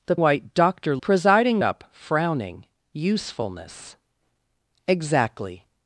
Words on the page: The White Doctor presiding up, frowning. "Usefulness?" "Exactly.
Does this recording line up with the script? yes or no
yes